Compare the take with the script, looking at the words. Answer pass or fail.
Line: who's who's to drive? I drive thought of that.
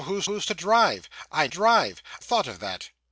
pass